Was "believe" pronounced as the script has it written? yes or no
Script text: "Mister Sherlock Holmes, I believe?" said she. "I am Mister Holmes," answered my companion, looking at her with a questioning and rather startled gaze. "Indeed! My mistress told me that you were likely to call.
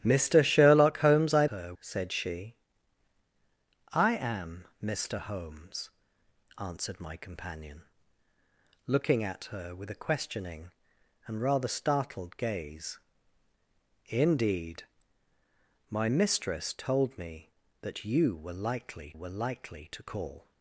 no